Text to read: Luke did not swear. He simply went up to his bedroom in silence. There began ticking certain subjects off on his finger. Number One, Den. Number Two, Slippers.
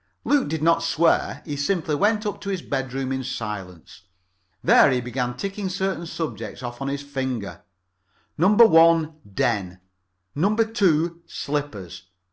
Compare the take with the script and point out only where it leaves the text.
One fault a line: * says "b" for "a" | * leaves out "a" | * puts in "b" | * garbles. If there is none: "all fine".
* puts in "he"